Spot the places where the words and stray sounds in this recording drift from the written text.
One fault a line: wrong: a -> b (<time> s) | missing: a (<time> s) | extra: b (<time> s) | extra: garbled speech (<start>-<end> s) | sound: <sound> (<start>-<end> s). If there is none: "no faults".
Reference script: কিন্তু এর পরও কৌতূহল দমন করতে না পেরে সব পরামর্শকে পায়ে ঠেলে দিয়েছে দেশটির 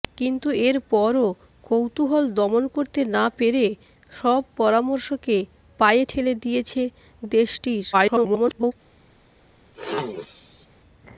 extra: garbled speech (7.9-8.7 s)
sound: throat clearing (9.7-10.7 s)